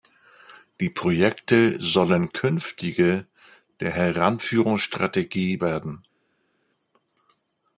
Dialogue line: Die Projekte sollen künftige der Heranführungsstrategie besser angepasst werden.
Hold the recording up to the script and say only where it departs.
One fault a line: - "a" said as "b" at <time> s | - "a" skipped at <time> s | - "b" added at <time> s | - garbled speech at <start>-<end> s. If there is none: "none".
- "besser angepasst" skipped at 5.6 s